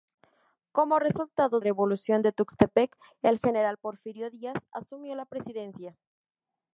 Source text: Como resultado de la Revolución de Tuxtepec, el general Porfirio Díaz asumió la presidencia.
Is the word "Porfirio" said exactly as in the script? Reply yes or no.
yes